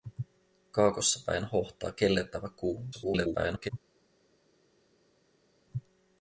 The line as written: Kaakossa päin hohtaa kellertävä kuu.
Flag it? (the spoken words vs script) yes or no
yes